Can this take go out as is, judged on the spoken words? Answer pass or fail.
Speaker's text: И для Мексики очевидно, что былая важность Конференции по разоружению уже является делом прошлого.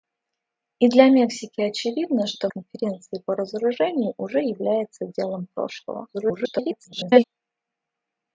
fail